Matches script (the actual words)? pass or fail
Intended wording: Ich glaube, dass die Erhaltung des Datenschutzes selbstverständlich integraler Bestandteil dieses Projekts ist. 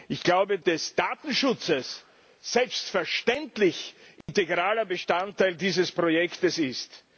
fail